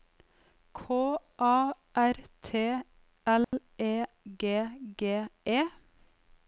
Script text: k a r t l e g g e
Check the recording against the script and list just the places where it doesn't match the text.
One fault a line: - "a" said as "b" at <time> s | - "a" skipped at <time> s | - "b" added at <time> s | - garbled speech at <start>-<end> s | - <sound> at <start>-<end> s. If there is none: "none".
- dropout at 3.4-3.5 s